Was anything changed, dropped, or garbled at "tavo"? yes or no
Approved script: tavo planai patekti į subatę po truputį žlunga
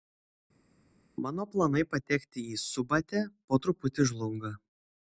yes